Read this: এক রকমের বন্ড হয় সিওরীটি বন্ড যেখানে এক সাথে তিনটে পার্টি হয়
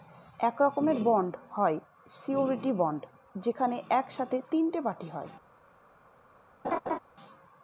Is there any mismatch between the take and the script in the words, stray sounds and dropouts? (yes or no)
yes